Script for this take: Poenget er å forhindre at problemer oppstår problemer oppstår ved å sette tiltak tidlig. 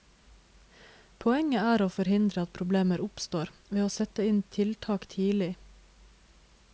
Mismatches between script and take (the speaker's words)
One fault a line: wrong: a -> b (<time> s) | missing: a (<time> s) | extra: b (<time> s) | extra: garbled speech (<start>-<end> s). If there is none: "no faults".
missing: problemer oppstår (3.5 s)
extra: inn (4.3 s)